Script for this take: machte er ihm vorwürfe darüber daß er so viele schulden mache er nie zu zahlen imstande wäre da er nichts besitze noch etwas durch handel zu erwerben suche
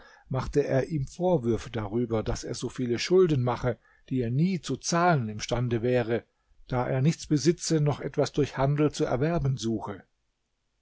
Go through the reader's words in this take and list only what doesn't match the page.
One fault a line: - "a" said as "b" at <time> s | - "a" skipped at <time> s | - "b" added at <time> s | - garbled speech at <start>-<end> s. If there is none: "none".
- "die" added at 4.1 s